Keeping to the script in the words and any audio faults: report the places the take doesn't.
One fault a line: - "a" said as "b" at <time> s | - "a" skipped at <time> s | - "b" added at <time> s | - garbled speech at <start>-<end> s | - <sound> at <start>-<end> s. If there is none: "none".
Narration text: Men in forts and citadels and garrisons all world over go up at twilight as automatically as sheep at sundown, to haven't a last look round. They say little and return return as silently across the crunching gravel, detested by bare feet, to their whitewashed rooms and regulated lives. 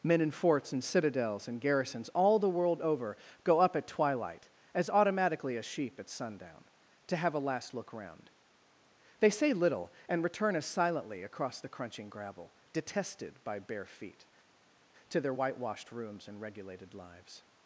- "the" added at 2.4 s
- "haven't" said as "have" at 7.2 s
- "return" skipped at 10.6 s